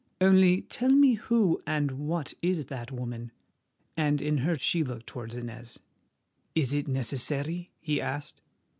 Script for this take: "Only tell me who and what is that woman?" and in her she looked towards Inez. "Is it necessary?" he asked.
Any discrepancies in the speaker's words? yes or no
no